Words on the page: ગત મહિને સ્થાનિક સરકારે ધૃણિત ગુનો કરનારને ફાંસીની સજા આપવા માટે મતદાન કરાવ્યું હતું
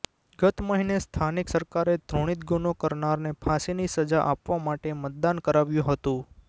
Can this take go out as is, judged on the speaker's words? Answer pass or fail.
pass